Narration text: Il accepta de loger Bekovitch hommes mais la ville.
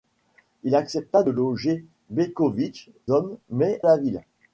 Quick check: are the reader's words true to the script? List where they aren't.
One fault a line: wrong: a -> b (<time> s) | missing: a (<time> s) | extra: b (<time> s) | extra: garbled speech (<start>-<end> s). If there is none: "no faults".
no faults